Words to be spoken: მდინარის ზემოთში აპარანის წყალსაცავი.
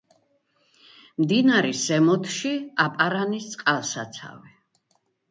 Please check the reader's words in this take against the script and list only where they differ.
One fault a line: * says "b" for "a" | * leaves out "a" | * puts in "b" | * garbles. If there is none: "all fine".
all fine